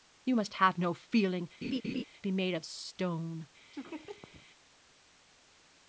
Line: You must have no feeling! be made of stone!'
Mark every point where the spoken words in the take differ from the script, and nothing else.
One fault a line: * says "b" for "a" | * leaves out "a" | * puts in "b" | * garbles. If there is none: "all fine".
all fine